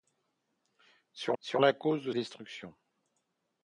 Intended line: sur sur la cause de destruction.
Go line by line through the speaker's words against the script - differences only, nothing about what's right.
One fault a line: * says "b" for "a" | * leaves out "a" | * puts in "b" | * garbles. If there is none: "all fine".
all fine